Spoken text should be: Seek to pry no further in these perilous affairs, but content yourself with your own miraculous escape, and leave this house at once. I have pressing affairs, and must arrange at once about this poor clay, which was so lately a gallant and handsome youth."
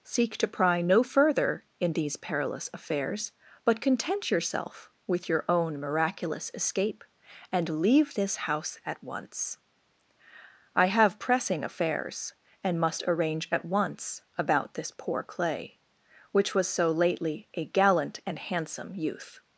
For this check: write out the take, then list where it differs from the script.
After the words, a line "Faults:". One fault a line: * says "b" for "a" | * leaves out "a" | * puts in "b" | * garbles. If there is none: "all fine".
Seek to pry no further in these perilous affairs, but content yourself with your own miraculous escape, and leave this house at once. I have pressing affairs, and must arrange at once about this poor clay, which was so lately a gallant and handsome youth."
Faults:
all fine